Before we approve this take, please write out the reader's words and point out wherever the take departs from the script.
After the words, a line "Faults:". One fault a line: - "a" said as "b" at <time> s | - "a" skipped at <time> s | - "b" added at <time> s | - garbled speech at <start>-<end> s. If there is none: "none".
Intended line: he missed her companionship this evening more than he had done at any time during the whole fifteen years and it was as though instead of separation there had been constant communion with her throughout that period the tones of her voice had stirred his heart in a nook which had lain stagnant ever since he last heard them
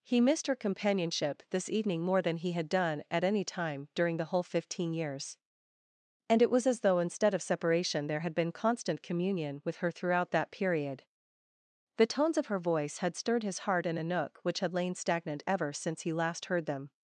he missed her companionship this evening more than he had done at any time during the whole fifteen years and it was as though instead of separation there had been constant communion with her throughout that period the tones of her voice had stirred his heart in a nook which had lain stagnant ever since he last heard them
Faults:
none